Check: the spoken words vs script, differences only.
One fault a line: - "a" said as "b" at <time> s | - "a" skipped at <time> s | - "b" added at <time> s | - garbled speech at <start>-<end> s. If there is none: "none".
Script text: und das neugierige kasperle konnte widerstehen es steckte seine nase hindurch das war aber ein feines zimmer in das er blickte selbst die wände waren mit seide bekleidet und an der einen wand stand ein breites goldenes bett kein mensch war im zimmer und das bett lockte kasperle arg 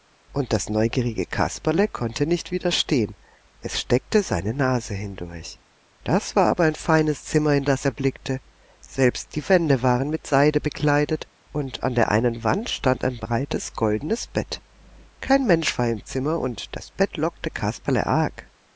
- "nicht" added at 2.2 s